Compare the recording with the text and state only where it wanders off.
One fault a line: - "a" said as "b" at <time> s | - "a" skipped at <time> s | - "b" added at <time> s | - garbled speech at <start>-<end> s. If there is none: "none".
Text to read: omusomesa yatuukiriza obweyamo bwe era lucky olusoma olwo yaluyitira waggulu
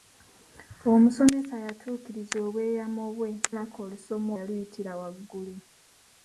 - "era" skipped at 3.3 s
- "olwo" skipped at 4.3 s